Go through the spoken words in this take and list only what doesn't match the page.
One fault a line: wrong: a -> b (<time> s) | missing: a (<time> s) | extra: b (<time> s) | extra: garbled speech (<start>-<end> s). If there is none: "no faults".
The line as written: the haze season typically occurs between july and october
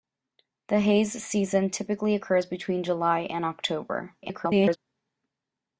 extra: garbled speech (4.2-4.8 s)